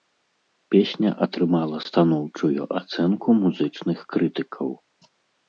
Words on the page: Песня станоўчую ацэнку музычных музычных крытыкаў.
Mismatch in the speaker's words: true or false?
true